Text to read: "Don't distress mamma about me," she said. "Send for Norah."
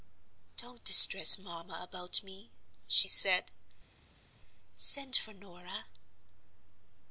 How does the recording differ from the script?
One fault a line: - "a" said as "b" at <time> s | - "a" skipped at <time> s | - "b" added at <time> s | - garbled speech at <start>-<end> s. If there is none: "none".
none